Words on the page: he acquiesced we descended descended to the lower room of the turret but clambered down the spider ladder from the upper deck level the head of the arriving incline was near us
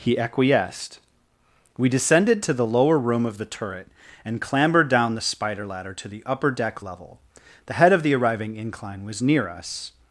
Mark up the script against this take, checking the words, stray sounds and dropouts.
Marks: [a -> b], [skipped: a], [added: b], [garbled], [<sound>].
he acquiesced we descended [skipped: descended] to the lower room of the turret [but -> and] clambered down the spider ladder [from -> to] the upper deck level the head of the arriving incline was near us